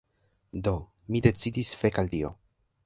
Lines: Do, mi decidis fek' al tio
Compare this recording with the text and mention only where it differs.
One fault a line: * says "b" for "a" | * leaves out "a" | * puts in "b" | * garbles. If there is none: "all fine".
all fine